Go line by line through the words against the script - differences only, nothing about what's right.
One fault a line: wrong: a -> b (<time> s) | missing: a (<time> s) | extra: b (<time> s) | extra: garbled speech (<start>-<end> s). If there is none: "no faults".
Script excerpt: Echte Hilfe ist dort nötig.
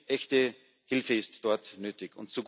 no faults